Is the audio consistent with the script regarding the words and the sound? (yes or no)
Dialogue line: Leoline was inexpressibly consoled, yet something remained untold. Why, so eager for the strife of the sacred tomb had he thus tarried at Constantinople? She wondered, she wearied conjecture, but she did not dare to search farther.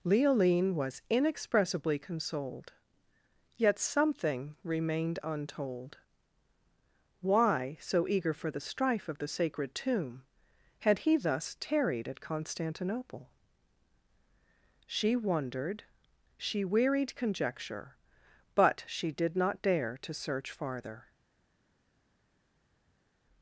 yes